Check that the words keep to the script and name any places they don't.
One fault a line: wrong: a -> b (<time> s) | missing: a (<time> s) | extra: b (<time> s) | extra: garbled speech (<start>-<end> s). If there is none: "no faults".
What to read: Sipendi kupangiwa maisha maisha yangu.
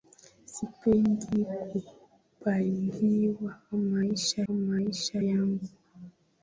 no faults